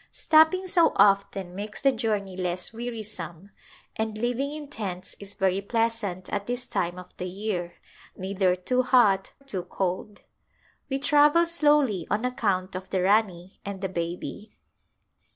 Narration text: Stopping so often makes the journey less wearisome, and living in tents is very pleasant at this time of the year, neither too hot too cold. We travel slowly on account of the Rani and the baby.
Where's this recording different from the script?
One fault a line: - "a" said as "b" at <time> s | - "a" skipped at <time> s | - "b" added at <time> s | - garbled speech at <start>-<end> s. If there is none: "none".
none